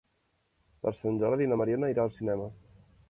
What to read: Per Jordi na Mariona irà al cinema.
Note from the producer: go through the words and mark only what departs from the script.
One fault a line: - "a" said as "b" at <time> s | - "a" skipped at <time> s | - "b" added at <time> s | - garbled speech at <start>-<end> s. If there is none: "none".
- "Sant" added at 1.0 s